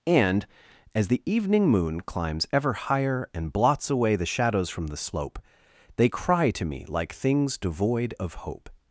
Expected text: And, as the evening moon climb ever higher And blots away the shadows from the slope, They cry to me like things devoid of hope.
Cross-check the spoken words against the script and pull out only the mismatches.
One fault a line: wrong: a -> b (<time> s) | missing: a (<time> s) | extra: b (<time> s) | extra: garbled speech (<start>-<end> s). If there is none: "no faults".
wrong: climb -> climbs (2.0 s)